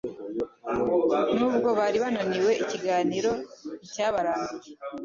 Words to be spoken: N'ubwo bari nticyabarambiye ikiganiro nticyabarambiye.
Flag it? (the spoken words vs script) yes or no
yes